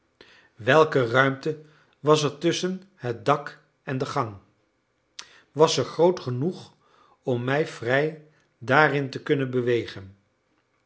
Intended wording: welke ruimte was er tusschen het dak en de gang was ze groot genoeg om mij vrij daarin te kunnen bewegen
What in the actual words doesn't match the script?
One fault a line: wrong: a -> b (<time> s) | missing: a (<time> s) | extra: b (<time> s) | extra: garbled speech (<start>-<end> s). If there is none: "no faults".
no faults